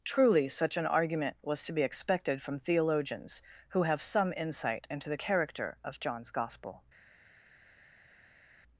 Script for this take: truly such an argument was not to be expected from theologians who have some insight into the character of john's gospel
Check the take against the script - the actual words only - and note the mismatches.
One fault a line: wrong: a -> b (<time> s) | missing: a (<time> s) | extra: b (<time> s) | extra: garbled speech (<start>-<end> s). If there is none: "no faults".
missing: not (1.6 s)